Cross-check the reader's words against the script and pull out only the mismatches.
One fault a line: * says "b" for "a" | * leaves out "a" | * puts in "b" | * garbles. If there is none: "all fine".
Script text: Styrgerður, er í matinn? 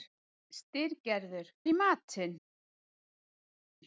all fine